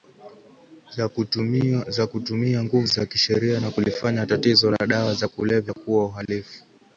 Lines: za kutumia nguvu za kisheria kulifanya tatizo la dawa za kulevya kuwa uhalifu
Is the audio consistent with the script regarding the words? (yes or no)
no